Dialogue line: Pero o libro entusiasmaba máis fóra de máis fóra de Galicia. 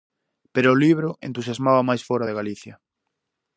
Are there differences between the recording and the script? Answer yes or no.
yes